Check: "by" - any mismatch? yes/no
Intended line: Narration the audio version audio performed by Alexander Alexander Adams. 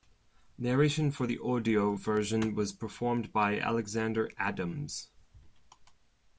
no